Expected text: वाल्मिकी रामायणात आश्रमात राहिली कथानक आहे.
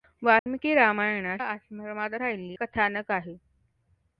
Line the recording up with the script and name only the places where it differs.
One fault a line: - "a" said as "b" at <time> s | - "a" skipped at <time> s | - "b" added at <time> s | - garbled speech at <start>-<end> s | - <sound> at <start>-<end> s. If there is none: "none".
- dropout at 0.4-0.5 s